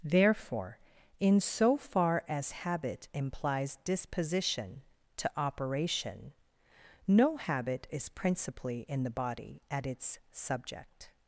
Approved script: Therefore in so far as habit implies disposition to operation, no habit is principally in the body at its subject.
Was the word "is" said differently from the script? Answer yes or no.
no